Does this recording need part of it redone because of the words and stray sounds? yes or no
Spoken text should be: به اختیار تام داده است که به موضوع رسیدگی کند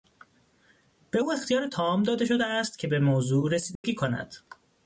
yes